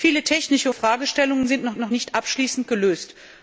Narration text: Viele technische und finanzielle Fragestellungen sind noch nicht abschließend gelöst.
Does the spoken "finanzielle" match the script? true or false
false